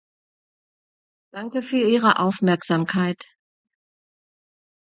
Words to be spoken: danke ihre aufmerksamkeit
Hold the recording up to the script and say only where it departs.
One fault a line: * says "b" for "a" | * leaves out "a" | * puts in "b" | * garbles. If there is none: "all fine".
* puts in "für"